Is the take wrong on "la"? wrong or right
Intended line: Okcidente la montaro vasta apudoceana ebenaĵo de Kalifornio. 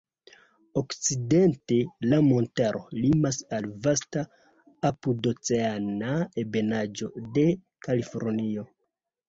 right